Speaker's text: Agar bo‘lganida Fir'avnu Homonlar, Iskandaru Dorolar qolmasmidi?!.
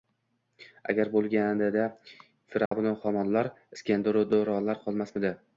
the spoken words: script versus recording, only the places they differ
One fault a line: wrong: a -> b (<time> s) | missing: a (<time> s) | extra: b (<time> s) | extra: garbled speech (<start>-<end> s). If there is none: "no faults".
no faults